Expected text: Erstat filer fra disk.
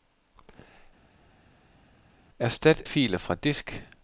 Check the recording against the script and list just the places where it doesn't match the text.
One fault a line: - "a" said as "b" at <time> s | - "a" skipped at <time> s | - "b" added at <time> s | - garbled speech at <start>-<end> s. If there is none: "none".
none